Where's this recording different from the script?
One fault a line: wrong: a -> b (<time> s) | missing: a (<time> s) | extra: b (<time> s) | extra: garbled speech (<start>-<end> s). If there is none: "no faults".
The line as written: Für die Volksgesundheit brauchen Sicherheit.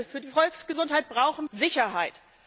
no faults